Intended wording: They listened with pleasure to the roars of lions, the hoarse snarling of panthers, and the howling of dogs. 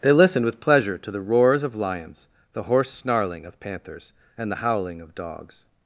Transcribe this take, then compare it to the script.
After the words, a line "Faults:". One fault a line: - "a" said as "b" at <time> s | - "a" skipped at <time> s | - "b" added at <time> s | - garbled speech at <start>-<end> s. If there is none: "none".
They listened with pleasure to the roars of lions, the hoarse snarling of panthers, and the howling of dogs.
Faults:
none